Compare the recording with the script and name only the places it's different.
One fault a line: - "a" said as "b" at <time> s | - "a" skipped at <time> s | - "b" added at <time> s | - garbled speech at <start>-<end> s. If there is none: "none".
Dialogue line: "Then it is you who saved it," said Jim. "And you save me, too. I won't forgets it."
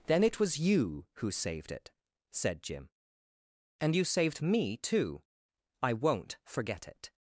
- "is" said as "was" at 0.4 s
- "save" said as "saved" at 4.0 s
- "forgets" said as "forget" at 6.4 s